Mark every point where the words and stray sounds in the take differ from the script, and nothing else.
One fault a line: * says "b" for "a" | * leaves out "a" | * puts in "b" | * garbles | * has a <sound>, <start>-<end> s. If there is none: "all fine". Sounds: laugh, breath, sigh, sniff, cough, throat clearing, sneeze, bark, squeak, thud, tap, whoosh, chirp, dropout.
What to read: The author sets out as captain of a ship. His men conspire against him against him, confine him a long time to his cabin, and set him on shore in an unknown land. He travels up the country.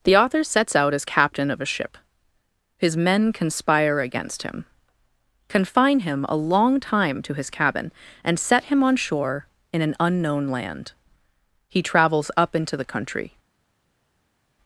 * leaves out "against him"
* puts in "into"